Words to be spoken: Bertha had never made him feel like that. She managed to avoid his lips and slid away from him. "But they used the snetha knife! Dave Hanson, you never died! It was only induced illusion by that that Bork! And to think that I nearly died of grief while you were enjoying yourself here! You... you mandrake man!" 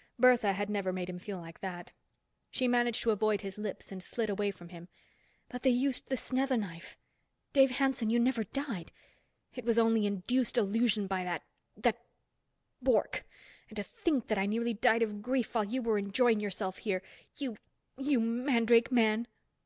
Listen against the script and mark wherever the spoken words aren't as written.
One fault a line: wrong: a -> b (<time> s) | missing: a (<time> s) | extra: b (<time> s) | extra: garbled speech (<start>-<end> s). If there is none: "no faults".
no faults